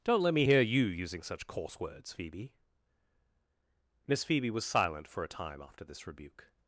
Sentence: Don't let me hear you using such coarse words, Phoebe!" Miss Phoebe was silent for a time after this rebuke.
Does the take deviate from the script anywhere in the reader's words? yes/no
no